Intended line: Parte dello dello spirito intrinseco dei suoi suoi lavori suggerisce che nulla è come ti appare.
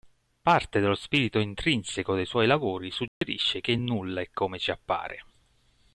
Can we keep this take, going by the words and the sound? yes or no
no